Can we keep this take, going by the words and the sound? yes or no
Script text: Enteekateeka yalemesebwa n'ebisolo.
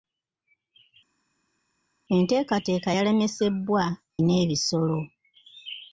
yes